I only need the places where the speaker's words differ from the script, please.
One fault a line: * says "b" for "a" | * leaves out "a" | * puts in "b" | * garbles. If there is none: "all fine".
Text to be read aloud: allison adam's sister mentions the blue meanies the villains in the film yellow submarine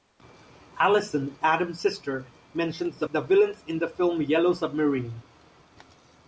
* leaves out "blue meanies"